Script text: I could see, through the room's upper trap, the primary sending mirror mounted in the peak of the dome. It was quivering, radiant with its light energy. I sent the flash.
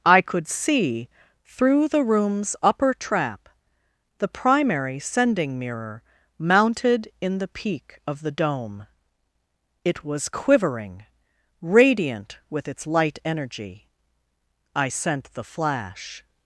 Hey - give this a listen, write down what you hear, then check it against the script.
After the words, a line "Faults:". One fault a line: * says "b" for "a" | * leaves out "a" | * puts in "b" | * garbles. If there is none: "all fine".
I could see, through the room's upper trap, the primary sending mirror mounted in the peak of the dome. It was quivering, radiant with its light energy. I sent the flash.
Faults:
all fine